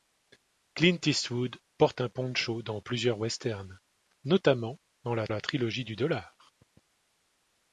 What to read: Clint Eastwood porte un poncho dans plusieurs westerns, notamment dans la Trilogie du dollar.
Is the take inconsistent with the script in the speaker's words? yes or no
yes